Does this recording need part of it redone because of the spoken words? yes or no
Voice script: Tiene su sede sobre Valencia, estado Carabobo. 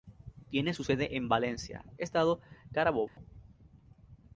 yes